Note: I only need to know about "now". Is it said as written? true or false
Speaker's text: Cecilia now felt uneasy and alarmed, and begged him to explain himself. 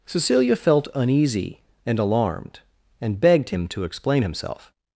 false